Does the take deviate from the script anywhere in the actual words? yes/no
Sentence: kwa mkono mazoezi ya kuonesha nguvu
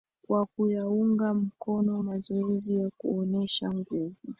yes